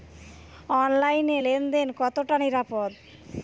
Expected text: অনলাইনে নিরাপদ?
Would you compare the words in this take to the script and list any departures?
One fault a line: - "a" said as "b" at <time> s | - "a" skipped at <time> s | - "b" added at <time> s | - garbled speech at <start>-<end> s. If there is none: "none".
- "লেন দেন কতটা" added at 1.4 s